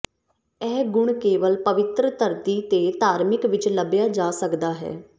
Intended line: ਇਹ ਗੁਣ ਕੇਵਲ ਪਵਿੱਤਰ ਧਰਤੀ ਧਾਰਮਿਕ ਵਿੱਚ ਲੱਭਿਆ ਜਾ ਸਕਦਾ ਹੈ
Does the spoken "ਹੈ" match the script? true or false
true